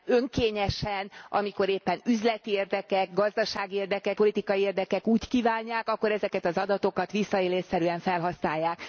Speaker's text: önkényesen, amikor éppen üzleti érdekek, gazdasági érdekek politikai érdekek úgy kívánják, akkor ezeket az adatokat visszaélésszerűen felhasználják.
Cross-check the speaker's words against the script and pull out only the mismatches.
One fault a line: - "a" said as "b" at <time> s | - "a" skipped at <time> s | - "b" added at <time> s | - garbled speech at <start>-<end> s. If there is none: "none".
none